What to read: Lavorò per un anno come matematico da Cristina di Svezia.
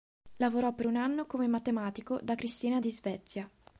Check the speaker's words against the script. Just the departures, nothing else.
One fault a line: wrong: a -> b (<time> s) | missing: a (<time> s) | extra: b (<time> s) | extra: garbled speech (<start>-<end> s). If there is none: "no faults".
no faults